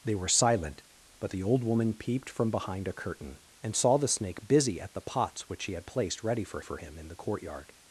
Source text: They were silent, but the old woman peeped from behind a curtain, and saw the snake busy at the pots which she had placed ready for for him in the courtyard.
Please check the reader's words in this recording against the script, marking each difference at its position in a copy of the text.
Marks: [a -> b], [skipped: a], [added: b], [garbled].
They were silent, but the old woman peeped from behind a curtain, and saw the snake busy at the pots which she had placed ready for for him in the courtyard.